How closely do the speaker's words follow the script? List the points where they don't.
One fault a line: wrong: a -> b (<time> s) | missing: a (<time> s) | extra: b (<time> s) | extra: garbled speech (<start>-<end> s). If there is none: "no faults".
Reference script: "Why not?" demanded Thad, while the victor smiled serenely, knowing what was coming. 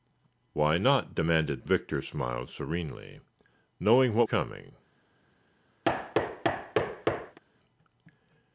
missing: Thad while the (1.7 s)
missing: was (4.3 s)